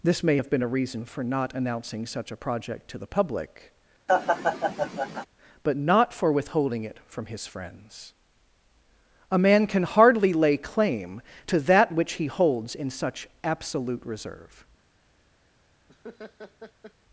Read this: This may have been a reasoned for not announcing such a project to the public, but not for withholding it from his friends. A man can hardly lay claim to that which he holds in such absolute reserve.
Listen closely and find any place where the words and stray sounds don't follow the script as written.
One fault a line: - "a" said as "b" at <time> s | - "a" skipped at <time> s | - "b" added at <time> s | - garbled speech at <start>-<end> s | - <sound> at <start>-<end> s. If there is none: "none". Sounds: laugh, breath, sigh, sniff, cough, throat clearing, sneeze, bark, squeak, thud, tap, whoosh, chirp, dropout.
- "reasoned" said as "reason" at 0.7 s
- laugh at 4.1-5.3 s
- laugh at 15.9-16.9 s